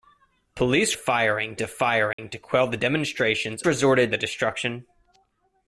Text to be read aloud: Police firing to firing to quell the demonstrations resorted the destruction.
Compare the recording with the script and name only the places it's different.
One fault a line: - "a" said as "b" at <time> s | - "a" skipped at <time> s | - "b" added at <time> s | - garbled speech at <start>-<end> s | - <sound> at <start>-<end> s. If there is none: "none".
- dropout at 2.1-2.2 s